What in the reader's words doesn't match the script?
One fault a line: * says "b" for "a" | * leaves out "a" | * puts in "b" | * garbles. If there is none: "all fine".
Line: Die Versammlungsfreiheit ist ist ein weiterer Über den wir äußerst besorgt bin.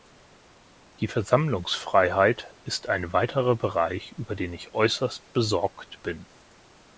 * leaves out "ist"
* puts in "Bereich"
* says "ich" for "wir"